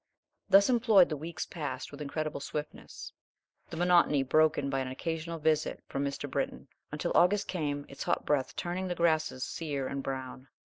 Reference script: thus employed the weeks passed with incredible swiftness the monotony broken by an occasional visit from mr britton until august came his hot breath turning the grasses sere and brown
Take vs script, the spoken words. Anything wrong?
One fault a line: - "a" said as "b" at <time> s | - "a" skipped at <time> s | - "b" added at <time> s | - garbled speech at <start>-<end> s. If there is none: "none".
- "his" said as "its" at 7.9 s